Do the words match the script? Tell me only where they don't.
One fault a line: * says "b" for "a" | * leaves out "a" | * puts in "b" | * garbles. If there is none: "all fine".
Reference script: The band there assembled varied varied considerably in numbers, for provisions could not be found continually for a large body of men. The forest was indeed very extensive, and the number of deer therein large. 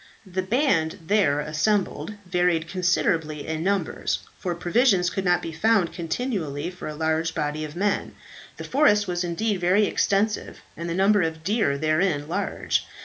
* leaves out "varied"